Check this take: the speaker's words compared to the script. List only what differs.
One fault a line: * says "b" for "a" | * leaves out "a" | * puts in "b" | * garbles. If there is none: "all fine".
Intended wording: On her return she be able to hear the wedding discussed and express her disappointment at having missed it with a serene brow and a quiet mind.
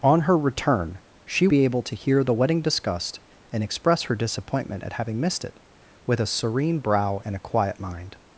all fine